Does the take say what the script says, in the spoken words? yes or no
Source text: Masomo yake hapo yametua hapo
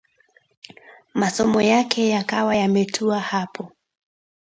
no